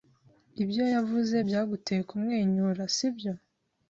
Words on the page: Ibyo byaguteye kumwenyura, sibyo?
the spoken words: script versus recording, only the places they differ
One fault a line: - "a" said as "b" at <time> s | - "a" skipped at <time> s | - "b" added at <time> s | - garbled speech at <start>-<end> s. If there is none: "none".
- "yavuze" added at 0.9 s